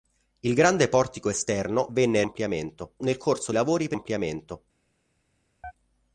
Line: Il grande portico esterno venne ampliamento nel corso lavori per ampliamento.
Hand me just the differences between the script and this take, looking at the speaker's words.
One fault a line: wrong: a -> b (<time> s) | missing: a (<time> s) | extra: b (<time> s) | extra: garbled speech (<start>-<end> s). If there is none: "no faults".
no faults